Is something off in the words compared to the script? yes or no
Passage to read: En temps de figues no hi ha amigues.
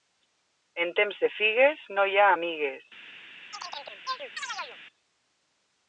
no